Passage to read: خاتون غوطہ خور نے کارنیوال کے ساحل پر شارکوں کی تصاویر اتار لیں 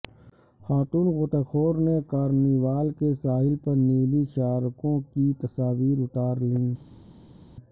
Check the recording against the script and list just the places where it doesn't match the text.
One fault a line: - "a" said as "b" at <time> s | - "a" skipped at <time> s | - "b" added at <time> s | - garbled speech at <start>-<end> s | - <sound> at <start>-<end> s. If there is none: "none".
- "نیلی" added at 3.8 s